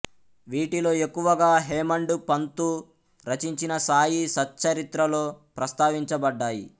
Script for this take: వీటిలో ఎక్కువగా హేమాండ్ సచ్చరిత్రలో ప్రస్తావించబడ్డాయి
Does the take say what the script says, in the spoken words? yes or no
no